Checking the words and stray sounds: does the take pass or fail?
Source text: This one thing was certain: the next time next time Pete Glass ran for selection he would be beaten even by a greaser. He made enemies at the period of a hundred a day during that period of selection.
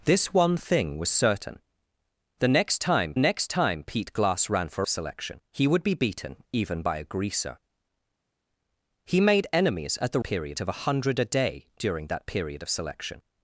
pass